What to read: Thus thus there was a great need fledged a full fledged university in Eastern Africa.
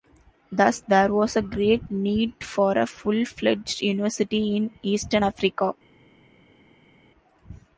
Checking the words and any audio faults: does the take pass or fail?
fail